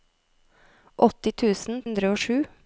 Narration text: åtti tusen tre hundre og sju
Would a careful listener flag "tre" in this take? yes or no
yes